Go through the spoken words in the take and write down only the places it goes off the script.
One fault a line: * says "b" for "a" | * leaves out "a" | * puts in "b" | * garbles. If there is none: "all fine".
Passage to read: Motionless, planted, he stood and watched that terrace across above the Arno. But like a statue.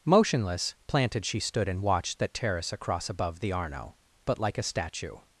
* says "she" for "he"